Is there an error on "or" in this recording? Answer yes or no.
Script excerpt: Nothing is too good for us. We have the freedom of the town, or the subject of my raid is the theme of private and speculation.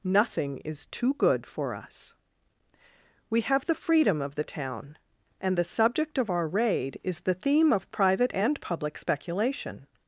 yes